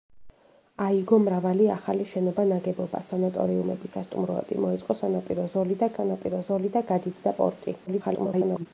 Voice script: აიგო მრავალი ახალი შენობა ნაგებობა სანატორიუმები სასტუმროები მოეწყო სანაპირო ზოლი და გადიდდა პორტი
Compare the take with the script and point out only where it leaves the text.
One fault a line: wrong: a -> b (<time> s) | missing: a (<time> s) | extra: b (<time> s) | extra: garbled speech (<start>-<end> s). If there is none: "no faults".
extra: სანაპირო ზოლი და (6.0 s)
extra: garbled speech (7.9-8.7 s)